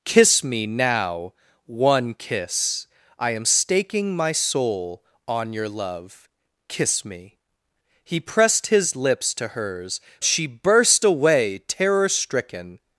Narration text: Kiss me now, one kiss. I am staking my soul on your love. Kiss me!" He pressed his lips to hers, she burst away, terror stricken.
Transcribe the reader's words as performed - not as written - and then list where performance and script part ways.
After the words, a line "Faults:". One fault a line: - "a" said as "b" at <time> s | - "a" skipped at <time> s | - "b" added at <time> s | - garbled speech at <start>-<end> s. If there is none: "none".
Kiss me now, one kiss. I am staking my soul on your love. Kiss me!" He pressed his lips to hers, she burst away, terror stricken.
Faults:
none